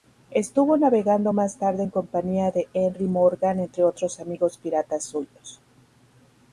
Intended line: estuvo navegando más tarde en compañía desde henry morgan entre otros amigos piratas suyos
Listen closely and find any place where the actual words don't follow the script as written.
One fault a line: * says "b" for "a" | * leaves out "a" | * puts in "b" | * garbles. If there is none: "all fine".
* says "de" for "desde"